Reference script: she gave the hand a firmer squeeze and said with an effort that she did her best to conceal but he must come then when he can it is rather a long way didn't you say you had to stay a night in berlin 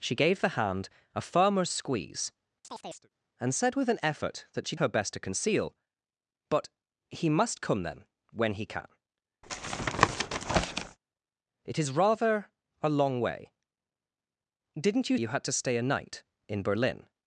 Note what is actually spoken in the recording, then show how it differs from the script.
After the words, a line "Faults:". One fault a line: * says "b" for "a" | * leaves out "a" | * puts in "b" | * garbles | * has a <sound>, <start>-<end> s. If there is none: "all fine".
she gave the hand a firmer squeeze and said with an effort that she her best to conceal but he must come then when he can it is rather a long way didn't you you had to stay a night in berlin
Faults:
* has a chirp, 2.6-3.1 s
* leaves out "did"
* has a tap, 9.4-11.0 s
* leaves out "say"